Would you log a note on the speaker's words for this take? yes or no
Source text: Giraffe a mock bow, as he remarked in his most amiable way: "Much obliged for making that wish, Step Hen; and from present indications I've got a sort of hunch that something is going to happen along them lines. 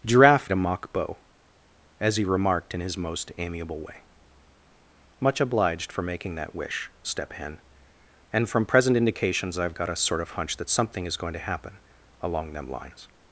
no